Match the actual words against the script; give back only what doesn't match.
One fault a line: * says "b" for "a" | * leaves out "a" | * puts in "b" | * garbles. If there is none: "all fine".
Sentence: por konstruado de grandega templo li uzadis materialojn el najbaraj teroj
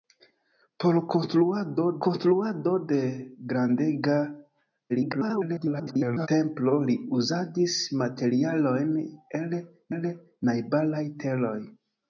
* puts in "konstruado"
* garbles
* puts in "el"